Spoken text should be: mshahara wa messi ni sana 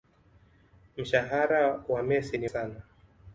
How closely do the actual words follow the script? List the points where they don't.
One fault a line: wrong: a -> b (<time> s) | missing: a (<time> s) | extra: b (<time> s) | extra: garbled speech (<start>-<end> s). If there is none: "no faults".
no faults